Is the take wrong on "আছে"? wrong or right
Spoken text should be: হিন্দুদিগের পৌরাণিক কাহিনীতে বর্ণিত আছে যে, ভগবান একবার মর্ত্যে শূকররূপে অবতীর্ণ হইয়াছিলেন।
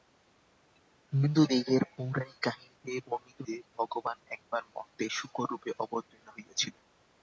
wrong